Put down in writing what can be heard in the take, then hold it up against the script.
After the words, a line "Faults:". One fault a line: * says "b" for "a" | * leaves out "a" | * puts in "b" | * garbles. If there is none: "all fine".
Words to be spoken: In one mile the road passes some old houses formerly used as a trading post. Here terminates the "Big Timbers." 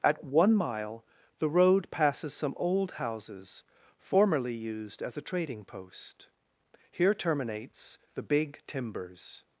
At one mile the road passes some old houses formerly used as a trading post. Here terminates the "Big Timbers."
Faults:
* says "At" for "In"